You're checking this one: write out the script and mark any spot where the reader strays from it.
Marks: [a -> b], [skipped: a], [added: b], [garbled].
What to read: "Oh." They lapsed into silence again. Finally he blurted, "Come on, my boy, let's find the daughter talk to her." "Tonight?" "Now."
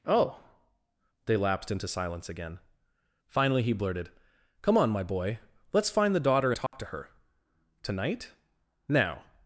"Oh." They lapsed into silence again. Finally he blurted, "Come on, my boy, let's find the daughter talk to her." "Tonight?" "Now."